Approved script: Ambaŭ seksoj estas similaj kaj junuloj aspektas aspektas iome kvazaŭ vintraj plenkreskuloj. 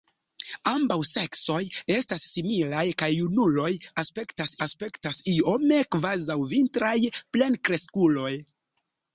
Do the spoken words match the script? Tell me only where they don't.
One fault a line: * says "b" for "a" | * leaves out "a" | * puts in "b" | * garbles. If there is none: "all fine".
all fine